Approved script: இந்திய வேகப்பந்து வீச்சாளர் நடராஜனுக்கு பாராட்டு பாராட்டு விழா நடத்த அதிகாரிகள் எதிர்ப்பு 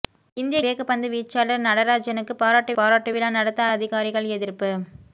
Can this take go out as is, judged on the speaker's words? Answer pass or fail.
pass